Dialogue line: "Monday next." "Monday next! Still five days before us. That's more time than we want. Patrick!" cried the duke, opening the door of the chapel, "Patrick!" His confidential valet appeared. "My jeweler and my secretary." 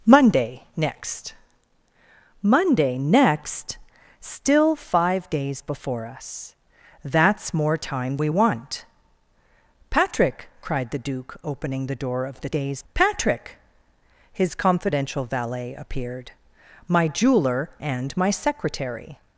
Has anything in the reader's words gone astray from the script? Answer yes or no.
yes